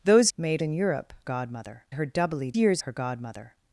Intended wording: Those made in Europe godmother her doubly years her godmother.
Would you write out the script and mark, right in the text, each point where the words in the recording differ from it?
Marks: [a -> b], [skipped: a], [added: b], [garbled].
Those made in Europe godmother her doubly years her godmother.